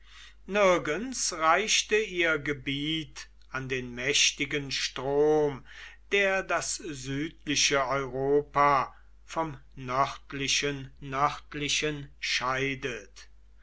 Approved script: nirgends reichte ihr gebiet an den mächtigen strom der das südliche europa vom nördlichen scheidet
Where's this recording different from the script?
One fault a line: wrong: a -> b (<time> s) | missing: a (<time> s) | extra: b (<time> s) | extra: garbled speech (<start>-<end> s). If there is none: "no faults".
extra: nördlichen (11.0 s)